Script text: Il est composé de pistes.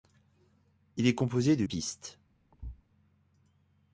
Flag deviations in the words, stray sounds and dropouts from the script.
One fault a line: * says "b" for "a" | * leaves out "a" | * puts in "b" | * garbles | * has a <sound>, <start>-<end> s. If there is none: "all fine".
* has a thud, 2.5-2.8 s